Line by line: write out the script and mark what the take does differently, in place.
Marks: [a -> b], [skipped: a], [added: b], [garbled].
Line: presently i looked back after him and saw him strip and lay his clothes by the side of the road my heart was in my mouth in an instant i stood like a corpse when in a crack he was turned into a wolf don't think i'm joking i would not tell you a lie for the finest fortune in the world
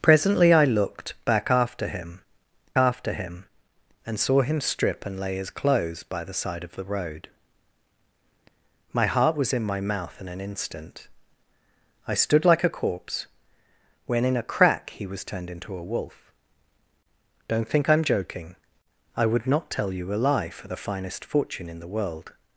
presently i looked back after him [added: after him] and saw him strip and lay his clothes by the side of the road my heart was in my mouth in an instant i stood like a corpse when in a crack he was turned into a wolf don't think i'm joking i would not tell you a lie for the finest fortune in the world